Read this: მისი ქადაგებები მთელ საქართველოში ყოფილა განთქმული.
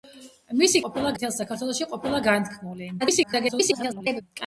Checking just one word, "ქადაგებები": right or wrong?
wrong